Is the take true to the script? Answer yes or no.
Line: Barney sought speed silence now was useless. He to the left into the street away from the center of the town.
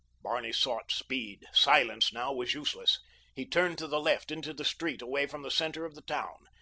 no